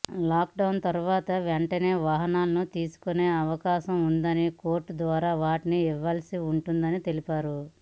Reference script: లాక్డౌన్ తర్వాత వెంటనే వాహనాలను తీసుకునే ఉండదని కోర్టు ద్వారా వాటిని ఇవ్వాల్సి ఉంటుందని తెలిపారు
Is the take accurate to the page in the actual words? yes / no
no